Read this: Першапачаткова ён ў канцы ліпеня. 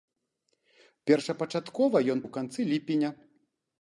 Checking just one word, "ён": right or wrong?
right